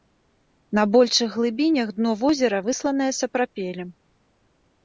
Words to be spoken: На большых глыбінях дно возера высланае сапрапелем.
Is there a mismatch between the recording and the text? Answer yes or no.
no